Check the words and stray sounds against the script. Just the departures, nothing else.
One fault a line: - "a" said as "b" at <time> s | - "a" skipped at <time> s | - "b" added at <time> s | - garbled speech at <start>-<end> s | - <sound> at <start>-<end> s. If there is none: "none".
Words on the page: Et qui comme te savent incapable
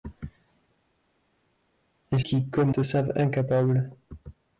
none